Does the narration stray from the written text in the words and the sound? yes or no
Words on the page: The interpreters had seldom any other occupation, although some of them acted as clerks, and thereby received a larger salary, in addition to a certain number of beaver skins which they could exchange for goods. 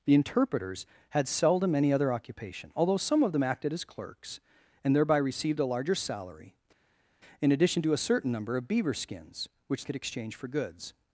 yes